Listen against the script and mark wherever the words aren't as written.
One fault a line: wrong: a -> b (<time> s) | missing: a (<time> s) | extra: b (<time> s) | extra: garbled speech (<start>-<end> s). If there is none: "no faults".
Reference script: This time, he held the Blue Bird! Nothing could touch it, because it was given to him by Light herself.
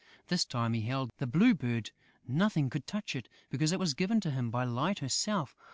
no faults